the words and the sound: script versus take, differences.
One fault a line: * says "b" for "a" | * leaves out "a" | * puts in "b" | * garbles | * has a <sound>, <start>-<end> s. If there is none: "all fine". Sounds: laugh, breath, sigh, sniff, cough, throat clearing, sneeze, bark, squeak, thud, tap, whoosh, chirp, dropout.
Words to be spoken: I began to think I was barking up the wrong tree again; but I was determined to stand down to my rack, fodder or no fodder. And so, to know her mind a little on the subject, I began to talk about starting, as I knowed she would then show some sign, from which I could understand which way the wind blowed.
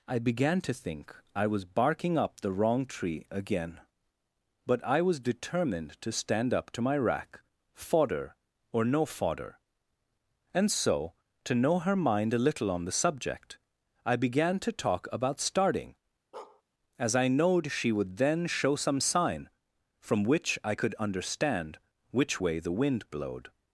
* says "up" for "down"
* has a bark, 16.3-16.6 s